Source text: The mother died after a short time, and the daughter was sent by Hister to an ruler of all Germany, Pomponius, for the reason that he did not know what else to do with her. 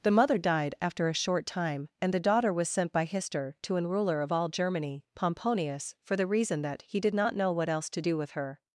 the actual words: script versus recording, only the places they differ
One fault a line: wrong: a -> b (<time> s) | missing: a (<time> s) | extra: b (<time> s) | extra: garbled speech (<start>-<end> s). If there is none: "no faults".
no faults